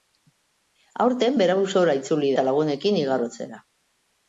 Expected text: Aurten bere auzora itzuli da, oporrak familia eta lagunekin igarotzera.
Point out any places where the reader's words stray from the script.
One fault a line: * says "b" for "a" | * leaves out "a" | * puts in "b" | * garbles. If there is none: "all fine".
* leaves out "da oporrak familia"